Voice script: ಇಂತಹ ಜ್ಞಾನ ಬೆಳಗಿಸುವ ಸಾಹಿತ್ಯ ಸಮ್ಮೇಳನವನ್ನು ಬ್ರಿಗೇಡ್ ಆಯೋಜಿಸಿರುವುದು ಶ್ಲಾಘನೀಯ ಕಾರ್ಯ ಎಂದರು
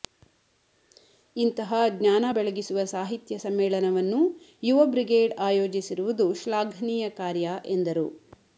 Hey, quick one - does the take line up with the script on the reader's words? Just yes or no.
no